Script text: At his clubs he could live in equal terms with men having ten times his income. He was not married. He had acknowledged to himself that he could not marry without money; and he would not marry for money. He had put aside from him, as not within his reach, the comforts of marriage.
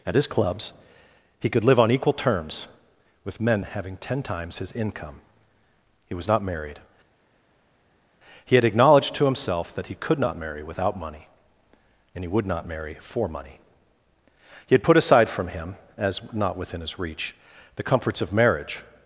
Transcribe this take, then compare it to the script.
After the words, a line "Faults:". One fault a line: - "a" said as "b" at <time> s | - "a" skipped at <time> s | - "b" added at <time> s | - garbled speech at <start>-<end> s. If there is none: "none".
At his clubs he could live on equal terms with men having ten times his income. He was not married. He had acknowledged to himself that he could not marry without money; and he would not marry for money. He had put aside from him, as not within his reach, the comforts of marriage.
Faults:
- "in" said as "on" at 1.8 s